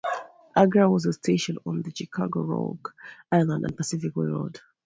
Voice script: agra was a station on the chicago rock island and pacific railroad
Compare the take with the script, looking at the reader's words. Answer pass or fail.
pass